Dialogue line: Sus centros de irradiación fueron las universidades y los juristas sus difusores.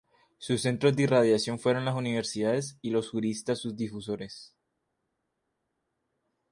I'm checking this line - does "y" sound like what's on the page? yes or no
yes